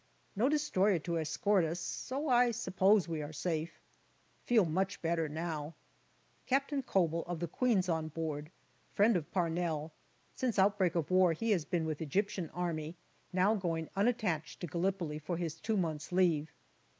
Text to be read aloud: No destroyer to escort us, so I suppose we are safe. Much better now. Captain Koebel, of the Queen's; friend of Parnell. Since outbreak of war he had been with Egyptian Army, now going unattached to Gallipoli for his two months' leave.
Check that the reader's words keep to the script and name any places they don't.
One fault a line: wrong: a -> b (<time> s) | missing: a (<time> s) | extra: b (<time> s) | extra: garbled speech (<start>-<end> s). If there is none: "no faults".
extra: Feel (4.4 s)
extra: on board (7.9 s)
wrong: had -> has (11.5 s)